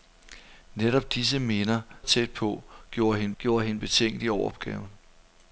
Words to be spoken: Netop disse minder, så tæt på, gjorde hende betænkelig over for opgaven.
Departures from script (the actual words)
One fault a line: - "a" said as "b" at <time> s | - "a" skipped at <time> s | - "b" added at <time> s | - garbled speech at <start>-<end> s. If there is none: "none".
- "så" skipped at 1.8 s
- "gjorde hende" added at 3.4 s
- "for" skipped at 4.5 s